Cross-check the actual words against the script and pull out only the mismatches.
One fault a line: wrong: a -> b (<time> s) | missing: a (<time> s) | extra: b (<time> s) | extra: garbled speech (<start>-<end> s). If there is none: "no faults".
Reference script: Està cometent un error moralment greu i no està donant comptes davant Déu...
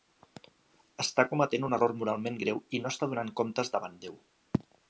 no faults